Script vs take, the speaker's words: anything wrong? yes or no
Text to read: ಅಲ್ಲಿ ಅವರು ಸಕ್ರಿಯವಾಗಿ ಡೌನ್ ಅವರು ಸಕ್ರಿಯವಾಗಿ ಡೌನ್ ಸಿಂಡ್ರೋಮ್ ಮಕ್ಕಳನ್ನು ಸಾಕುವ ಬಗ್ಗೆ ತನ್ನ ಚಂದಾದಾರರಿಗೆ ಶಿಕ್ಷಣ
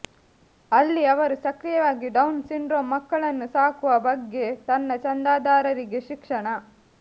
yes